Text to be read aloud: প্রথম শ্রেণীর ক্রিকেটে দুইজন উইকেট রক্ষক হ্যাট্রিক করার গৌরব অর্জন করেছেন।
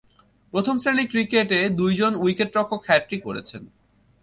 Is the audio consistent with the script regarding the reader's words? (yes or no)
no